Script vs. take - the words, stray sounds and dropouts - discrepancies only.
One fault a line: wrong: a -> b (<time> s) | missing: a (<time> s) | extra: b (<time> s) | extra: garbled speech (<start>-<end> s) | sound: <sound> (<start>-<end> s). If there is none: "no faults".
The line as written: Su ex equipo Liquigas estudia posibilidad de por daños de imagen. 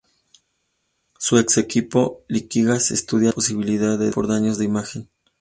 no faults